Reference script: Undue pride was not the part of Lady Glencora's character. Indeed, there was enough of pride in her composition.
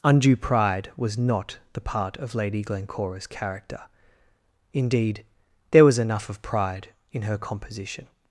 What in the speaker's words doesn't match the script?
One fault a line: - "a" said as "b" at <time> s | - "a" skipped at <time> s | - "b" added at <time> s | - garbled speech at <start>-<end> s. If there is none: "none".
none